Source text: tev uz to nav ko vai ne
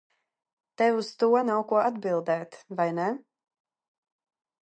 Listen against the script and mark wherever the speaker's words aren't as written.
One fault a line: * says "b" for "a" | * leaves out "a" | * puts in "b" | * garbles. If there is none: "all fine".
* puts in "atbildēt"